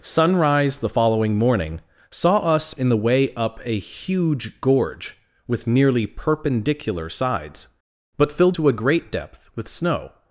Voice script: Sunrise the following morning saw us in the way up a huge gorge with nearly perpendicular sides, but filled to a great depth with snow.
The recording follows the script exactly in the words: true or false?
true